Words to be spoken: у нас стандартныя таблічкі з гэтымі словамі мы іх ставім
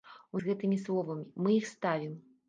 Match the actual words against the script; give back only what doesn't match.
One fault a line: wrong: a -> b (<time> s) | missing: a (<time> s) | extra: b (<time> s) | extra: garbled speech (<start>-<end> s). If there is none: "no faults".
missing: нас стандартныя таблічкі (0.4 s)